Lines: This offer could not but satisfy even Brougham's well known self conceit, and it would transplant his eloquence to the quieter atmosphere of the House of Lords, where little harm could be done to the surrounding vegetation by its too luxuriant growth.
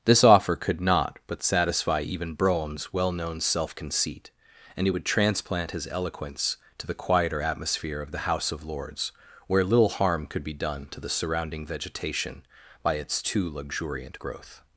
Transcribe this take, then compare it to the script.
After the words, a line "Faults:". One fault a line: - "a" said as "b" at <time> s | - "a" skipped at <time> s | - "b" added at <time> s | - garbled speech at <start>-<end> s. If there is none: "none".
This offer could not but satisfy even Brougham's well known self conceit, and it would transplant his eloquence to the quieter atmosphere of the House of Lords, where little harm could be done to the surrounding vegetation by its too luxuriant growth.
Faults:
none